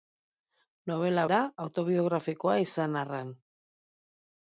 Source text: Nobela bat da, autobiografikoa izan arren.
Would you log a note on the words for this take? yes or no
yes